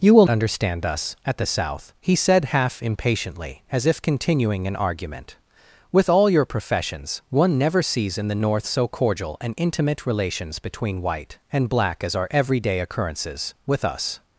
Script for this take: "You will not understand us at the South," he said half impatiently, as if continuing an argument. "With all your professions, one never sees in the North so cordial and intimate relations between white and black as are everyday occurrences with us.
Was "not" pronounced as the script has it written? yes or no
no